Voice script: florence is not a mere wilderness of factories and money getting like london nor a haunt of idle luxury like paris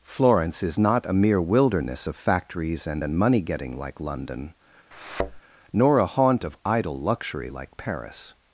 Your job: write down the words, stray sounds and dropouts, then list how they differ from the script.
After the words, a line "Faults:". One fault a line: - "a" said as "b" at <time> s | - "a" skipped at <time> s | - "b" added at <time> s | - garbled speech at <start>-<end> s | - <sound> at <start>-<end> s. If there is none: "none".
florence is not a mere wilderness of factories and and money getting like london nor a haunt of idle luxury like paris
Faults:
- "and" added at 3.0 s
- thud at 4.9-5.4 s